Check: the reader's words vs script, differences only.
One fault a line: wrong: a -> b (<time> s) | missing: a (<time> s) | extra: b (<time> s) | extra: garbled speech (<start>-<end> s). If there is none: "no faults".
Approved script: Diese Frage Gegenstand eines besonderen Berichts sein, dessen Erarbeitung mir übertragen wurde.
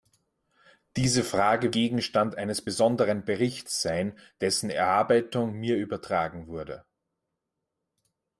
no faults